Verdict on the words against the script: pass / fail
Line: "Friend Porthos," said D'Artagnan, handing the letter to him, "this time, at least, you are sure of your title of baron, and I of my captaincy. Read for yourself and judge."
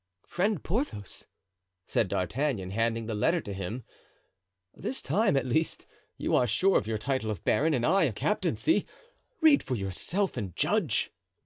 fail